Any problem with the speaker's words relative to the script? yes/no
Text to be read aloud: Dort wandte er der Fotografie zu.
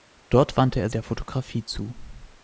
no